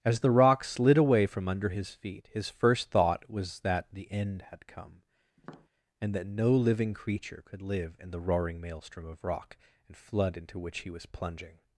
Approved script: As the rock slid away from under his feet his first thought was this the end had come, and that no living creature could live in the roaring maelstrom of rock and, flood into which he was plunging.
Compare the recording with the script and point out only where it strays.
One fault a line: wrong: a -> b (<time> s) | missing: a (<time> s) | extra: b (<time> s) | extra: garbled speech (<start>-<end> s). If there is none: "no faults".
wrong: this -> that (3.6 s)